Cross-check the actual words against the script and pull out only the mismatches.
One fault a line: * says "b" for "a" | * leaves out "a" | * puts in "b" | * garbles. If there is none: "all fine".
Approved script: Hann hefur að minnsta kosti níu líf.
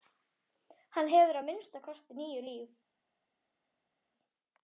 all fine